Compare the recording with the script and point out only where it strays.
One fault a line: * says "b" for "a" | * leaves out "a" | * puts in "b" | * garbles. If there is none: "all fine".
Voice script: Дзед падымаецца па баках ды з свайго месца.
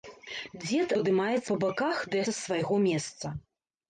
all fine